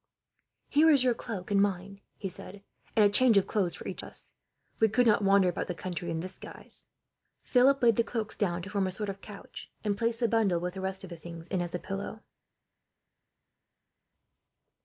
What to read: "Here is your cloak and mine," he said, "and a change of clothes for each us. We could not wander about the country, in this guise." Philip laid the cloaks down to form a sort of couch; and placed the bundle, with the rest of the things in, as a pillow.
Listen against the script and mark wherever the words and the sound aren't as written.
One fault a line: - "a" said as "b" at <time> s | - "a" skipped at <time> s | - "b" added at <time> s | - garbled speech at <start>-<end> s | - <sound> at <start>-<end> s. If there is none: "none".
none